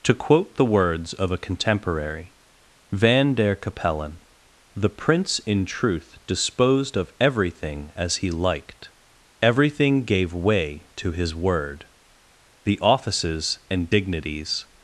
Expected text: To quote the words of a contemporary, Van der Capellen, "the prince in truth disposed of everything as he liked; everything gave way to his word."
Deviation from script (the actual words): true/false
true